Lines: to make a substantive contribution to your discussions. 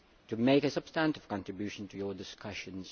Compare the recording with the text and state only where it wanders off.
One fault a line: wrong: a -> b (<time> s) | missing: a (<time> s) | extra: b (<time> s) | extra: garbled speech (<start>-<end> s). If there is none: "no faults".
no faults